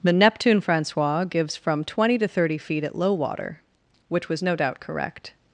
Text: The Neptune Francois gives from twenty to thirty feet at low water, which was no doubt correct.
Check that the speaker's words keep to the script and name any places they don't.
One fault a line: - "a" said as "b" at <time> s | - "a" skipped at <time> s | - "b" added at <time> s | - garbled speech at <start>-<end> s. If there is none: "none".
none